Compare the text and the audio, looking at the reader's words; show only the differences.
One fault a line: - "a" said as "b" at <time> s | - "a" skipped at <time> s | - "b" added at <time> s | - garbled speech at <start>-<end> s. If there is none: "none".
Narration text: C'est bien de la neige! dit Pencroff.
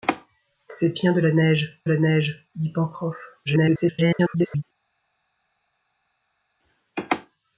- "la neige" added at 1.8 s
- garbled speech at 3.5-4.6 s